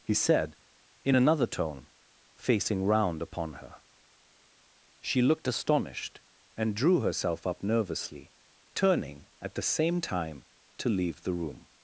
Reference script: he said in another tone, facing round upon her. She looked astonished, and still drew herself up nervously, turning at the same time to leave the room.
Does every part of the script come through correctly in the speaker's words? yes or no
no